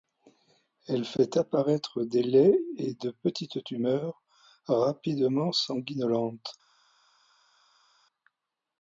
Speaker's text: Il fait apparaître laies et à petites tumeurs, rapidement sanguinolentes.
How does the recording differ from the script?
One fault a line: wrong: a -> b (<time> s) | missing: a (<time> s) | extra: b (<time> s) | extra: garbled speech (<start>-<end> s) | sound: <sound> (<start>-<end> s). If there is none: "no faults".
wrong: Il -> Elle (0.9 s)
extra: des (2.0 s)
wrong: à -> de (2.9 s)